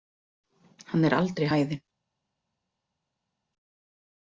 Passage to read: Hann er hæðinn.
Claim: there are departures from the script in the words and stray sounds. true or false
true